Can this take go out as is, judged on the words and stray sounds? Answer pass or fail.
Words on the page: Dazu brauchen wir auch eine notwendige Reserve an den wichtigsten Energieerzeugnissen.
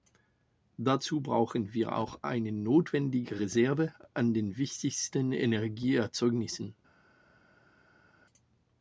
pass